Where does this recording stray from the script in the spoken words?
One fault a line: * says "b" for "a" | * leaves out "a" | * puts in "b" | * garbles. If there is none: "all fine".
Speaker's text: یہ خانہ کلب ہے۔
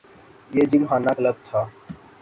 * puts in "جم"
* says "تھا" for "ہے"